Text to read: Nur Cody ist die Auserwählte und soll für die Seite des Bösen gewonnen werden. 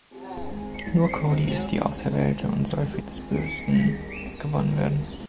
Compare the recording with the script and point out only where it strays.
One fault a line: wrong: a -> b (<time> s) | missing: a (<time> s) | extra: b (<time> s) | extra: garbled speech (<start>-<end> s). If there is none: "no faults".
missing: die Seite (3.0 s)